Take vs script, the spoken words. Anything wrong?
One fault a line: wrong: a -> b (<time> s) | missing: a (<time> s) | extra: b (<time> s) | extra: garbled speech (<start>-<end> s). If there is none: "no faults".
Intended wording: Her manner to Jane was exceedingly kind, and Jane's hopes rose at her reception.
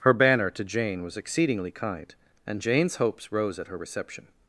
wrong: manner -> banner (0.1 s)